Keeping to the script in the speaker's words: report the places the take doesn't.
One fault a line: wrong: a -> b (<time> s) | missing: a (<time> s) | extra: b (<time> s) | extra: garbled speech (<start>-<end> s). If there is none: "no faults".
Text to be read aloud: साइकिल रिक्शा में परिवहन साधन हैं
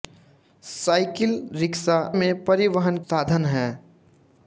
no faults